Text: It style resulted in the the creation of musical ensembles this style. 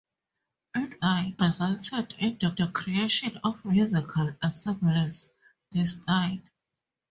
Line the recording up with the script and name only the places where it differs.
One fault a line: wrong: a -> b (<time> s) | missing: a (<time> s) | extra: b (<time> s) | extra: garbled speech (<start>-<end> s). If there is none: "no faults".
no faults